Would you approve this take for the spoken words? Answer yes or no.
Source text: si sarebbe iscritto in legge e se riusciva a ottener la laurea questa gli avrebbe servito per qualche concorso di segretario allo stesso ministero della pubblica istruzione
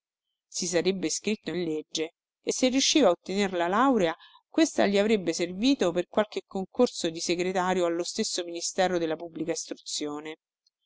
yes